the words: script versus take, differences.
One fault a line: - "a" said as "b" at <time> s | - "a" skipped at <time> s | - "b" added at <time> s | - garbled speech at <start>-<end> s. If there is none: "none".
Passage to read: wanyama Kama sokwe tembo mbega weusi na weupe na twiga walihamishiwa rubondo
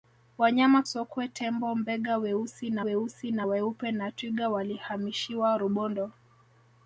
- "Kama" skipped at 0.8 s
- "weusi na" added at 2.8 s